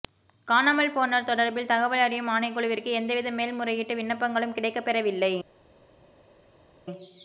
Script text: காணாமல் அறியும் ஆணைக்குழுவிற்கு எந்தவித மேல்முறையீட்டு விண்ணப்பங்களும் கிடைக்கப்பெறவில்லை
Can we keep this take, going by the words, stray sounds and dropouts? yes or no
no